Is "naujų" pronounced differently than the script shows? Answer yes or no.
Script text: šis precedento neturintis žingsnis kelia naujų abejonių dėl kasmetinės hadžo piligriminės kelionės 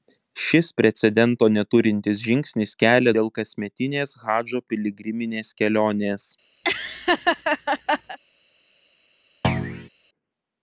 yes